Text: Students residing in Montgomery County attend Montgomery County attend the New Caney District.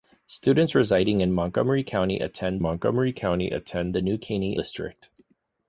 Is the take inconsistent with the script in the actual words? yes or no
no